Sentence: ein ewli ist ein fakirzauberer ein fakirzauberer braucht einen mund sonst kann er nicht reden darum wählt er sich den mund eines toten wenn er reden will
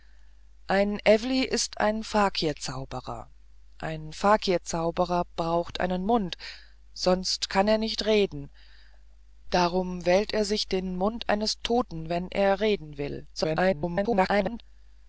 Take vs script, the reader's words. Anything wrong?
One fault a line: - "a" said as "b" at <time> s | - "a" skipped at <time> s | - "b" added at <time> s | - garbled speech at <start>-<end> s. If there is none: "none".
- garbled speech at 13.3-14.6 s